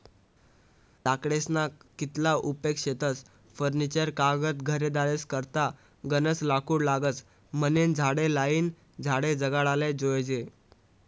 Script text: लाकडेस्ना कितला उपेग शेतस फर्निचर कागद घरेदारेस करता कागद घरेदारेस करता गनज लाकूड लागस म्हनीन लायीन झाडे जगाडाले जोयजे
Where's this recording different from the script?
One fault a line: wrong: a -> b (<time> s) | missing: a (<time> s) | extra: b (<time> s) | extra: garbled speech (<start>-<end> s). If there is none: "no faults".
missing: कागद घरेदारेस करता (5.6 s)
extra: झाडे (7.9 s)